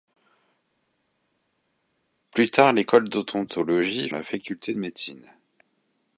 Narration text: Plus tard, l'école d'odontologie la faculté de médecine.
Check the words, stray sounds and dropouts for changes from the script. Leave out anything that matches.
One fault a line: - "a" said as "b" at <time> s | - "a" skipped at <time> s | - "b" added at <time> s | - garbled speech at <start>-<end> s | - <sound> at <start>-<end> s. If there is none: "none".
none